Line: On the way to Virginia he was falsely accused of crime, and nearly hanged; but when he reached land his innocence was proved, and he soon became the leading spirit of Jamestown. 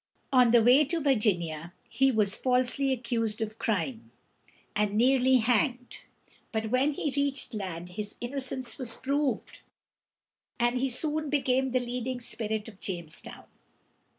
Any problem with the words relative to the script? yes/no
no